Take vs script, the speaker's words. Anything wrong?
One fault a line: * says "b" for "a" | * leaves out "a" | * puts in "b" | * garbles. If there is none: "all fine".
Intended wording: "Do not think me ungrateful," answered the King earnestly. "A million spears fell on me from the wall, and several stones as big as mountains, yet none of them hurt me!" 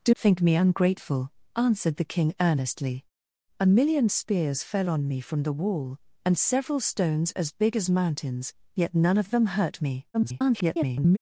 * leaves out "not"
* garbles